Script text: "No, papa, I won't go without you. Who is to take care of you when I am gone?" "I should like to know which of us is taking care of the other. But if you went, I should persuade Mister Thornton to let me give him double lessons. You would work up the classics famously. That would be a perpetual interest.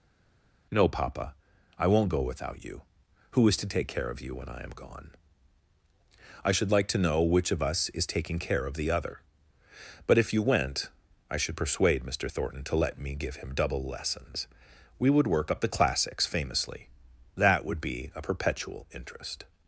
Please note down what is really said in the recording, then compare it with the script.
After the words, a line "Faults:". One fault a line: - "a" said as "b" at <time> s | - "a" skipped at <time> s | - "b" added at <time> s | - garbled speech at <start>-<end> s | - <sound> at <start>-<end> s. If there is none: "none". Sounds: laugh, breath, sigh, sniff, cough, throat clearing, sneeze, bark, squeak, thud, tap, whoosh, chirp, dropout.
"No, papa, I won't go without you. Who is to take care of you when I am gone?" "I should like to know which of us is taking care of the other. But if you went, I should persuade Mister Thornton to let me give him double lessons. We would work up the classics famously. That would be a perpetual interest.
Faults:
- "You" said as "We" at 15.0 s